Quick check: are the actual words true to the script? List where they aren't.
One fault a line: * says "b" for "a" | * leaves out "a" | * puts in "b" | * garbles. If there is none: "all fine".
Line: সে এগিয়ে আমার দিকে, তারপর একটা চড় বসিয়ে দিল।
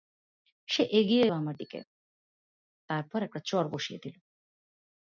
all fine